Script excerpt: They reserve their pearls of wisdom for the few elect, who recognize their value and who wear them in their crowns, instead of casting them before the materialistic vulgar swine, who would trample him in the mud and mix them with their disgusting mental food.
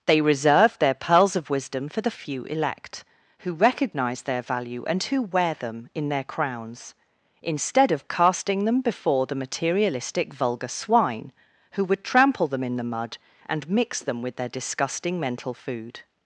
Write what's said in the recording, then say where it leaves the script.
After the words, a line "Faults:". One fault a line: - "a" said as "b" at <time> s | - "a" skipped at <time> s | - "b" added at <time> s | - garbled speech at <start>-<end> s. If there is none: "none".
They reserve their pearls of wisdom for the few elect, who recognize their value and who wear them in their crowns, instead of casting them before the materialistic vulgar swine, who would trample them in the mud and mix them with their disgusting mental food.
Faults:
- "him" said as "them" at 12.5 s